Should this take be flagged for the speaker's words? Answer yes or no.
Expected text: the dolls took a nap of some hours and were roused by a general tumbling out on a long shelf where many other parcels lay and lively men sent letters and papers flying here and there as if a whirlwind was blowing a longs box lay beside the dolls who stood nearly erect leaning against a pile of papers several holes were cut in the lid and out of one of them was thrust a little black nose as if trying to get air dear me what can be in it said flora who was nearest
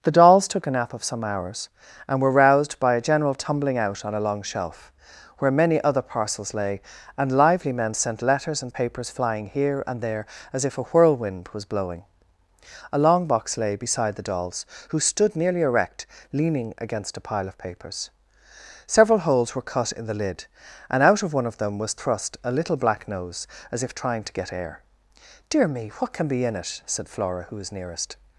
yes